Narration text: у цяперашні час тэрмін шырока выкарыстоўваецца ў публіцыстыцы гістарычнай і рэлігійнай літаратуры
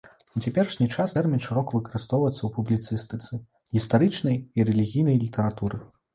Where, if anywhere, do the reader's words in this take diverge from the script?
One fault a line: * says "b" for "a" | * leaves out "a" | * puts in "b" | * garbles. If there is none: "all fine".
all fine